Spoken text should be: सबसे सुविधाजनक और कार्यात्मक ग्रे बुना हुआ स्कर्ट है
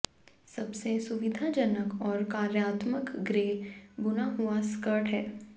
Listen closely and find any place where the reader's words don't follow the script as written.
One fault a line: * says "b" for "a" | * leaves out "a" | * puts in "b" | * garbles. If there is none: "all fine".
all fine